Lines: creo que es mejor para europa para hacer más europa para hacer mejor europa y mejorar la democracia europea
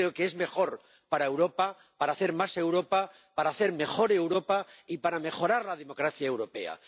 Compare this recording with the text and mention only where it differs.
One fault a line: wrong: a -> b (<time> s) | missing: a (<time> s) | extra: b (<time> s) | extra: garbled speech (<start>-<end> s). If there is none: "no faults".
extra: para (5.0 s)